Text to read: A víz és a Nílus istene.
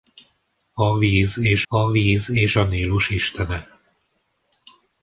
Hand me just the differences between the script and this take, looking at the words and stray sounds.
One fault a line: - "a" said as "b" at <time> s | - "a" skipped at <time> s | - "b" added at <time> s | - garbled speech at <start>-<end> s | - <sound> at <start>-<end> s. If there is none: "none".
- "víz és a" added at 1.9 s